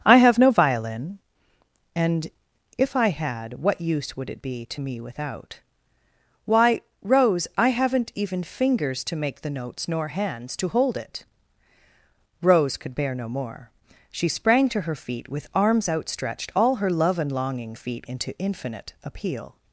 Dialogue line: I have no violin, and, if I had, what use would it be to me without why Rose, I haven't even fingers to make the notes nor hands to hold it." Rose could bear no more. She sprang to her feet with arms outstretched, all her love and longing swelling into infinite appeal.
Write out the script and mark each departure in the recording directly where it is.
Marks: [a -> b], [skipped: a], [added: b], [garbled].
I have no violin, and, if I had, what use would it be to me without why Rose, I haven't even fingers to make the notes nor hands to hold it." Rose could bear no more. She sprang to her feet with arms outstretched, all her love and longing [swelling -> feet] into infinite appeal.